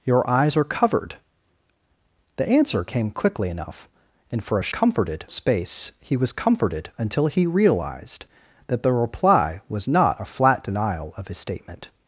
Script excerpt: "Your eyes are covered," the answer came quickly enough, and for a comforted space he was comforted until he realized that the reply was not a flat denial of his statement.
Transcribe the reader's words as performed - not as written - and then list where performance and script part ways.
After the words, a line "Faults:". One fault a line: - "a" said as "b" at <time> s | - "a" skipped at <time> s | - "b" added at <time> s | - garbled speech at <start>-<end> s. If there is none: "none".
"Your eyes are covered," the answer came quickly enough, and for a comforted space he was comforted until he realized that the reply was not a flat denial of his statement.
Faults:
none